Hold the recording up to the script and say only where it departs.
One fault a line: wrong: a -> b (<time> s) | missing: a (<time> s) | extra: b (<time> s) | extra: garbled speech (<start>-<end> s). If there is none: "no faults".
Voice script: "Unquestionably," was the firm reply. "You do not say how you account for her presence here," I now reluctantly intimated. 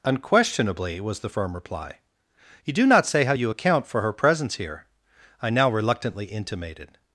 no faults